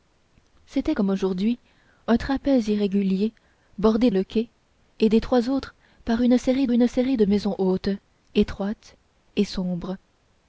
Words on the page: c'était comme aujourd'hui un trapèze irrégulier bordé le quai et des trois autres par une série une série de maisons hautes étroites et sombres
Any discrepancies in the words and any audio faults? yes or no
no